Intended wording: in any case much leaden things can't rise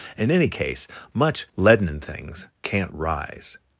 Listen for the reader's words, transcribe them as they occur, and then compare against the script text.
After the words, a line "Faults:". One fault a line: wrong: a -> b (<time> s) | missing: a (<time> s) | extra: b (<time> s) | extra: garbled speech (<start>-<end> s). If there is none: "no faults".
in any case much leaden things can't rise
Faults:
no faults